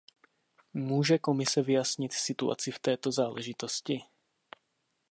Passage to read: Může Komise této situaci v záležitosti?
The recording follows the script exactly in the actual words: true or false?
false